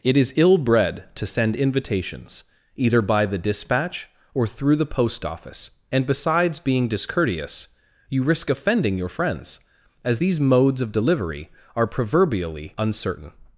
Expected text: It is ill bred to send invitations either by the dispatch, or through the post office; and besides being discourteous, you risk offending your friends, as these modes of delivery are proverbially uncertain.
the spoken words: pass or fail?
pass